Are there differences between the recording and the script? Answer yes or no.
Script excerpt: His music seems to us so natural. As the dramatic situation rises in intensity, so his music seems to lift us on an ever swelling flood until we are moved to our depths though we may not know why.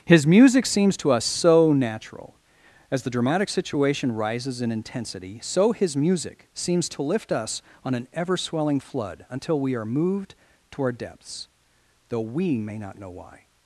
no